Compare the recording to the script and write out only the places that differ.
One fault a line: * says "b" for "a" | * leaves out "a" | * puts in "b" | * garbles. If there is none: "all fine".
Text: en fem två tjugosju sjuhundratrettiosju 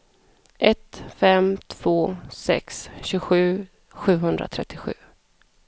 * says "ett" for "en"
* puts in "sex"